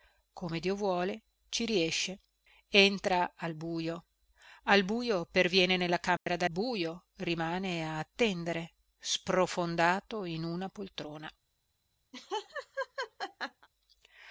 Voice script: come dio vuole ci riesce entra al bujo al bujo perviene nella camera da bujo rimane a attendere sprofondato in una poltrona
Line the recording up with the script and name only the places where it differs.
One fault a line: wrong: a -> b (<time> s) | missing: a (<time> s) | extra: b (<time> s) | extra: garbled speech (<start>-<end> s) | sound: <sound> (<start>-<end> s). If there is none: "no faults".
sound: dropout (6.2-6.3 s)
sound: laugh (12.1-13.7 s)